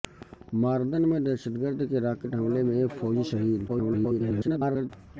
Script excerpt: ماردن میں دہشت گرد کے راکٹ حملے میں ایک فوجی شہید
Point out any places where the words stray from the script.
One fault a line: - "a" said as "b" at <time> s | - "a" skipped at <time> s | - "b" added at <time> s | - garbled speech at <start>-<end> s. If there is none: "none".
- garbled speech at 3.7-4.9 s